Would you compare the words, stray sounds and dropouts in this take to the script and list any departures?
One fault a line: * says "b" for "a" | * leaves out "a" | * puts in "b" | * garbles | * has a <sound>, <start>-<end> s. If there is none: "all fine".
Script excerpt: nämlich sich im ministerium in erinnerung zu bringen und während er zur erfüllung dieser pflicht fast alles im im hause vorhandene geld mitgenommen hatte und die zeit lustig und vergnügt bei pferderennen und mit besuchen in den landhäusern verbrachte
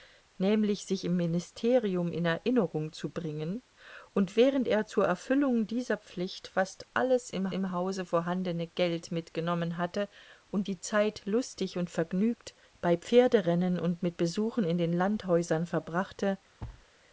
* has a thud, 16.6-16.9 s